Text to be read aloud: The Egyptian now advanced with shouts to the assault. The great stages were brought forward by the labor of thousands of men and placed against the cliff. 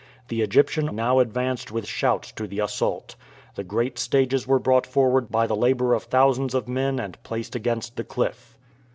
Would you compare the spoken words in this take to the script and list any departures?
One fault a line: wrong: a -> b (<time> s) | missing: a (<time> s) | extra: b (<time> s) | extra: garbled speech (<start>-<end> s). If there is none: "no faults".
no faults